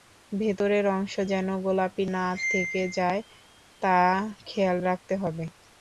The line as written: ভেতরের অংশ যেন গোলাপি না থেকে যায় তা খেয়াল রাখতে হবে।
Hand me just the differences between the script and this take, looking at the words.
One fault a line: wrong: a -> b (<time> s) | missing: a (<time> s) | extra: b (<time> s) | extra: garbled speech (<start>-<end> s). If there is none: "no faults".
no faults